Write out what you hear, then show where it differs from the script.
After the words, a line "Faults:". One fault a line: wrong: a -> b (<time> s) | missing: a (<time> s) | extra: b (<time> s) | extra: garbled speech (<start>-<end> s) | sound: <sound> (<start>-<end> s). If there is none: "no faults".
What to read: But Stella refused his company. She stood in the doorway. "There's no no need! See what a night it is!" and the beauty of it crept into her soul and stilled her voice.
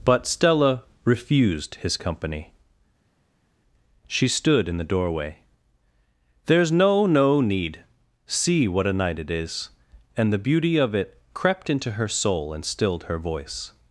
But Stella refused his company. She stood in the doorway. "There's no no need! See what a night it is!" and the beauty of it crept into her soul and stilled her voice.
Faults:
no faults